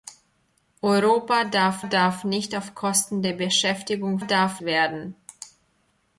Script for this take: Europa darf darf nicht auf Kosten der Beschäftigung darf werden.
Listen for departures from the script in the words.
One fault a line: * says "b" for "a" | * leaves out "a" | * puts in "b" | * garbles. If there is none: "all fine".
all fine